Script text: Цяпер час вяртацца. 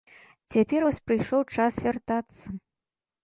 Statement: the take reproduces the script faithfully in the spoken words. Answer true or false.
false